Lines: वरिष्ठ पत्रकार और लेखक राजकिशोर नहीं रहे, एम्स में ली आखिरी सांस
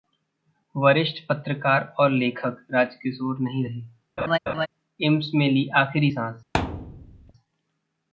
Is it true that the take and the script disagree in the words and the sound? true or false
true